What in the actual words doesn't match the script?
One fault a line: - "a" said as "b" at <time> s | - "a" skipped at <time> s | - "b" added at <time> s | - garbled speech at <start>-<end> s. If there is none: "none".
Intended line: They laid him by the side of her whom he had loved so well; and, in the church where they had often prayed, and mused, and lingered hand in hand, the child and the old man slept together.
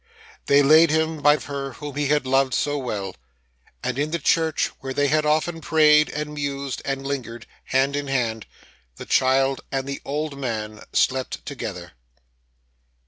- "the side" skipped at 1.4 s